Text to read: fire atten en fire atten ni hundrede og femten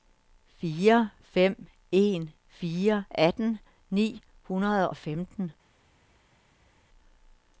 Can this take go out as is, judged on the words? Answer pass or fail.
fail